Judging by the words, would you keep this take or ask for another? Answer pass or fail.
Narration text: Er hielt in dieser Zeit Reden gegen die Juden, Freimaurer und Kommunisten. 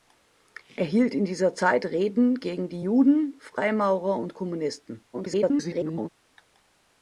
fail